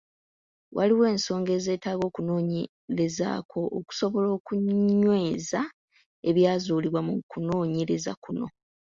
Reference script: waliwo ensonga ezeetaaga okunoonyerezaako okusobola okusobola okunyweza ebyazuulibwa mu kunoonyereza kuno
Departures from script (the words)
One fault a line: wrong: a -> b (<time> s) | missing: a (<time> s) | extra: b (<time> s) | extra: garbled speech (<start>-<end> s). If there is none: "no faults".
missing: okusobola (4.3 s)